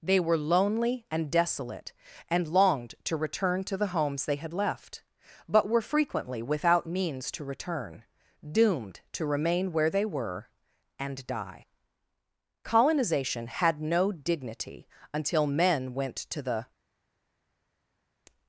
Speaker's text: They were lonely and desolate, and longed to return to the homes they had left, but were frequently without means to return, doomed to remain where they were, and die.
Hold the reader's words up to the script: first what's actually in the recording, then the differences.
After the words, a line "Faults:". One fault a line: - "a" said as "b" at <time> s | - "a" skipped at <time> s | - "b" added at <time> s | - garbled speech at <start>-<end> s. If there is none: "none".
They were lonely and desolate, and longed to return to the homes they had left, but were frequently without means to return, doomed to remain where they were, and die. Colonization had no dignity until men went to the
Faults:
- "Colonization had no dignity until men went to the" added at 12.6 s